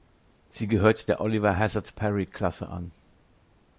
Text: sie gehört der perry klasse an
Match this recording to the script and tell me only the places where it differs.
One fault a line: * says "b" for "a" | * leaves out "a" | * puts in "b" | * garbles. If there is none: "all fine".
* puts in "oliver hazard"